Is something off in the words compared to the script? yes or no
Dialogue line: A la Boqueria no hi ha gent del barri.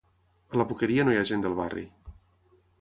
no